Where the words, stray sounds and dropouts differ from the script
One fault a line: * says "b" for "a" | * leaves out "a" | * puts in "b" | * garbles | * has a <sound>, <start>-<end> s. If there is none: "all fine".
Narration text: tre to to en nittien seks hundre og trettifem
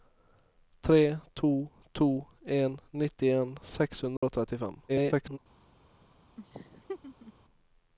* has a dropout, 4.2-4.2 s
* garbles
* has a laugh, 6.4-7.3 s